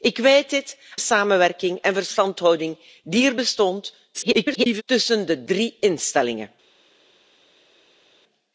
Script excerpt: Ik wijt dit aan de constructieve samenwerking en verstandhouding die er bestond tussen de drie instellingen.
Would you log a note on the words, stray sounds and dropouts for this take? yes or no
yes